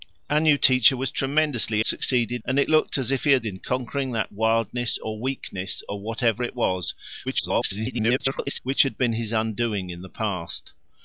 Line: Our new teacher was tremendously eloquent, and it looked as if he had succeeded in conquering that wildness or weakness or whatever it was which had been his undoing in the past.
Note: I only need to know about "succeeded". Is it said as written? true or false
false